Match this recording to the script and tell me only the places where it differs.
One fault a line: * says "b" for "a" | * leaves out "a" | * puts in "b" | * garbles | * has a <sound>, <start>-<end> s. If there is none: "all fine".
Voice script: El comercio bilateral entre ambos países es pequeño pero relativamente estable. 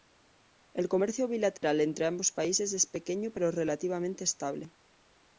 * has a dropout, 1.6-1.6 s